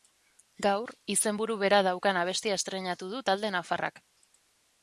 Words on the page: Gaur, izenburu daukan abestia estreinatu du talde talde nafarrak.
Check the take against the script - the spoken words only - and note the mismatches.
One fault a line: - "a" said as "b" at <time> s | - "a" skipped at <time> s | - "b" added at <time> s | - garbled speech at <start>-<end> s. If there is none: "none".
- "bera" added at 1.6 s
- "talde" skipped at 3.5 s